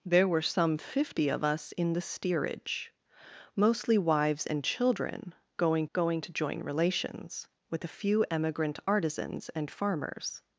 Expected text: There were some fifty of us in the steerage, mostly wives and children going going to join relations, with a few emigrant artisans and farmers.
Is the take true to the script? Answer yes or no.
yes